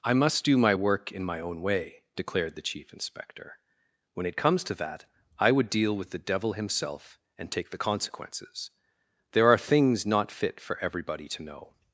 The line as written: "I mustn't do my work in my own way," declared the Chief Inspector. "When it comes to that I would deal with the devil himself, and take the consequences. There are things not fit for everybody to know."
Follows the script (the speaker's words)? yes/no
no